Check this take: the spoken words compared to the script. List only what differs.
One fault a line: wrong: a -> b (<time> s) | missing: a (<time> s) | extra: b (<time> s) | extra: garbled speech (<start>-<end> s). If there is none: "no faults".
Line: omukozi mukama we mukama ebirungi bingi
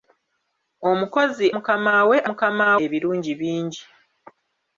no faults